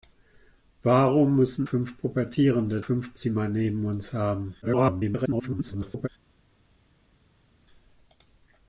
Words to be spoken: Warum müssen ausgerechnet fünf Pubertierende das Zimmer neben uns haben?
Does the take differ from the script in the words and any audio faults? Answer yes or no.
yes